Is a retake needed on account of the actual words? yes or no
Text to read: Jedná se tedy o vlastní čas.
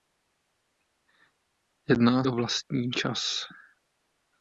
yes